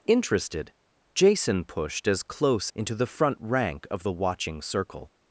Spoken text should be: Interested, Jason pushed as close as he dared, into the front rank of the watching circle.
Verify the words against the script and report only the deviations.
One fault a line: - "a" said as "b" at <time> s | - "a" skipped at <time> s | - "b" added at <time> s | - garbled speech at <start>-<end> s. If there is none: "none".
- "as he dared" skipped at 2.7 s